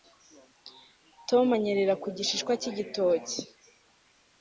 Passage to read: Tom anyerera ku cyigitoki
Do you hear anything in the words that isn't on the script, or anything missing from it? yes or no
yes